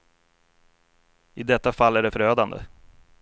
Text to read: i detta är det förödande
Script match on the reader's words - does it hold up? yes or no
no